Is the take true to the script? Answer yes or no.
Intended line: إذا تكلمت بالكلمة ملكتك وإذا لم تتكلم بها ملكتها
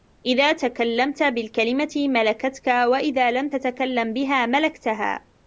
yes